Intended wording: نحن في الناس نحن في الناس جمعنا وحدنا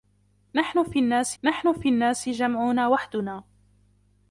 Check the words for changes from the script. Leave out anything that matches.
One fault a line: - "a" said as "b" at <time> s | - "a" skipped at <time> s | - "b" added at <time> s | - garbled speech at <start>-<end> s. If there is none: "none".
none